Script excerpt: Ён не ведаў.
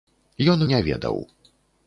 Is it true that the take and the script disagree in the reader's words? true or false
false